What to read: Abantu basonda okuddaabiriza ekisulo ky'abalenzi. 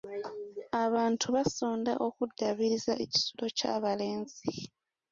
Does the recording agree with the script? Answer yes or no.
yes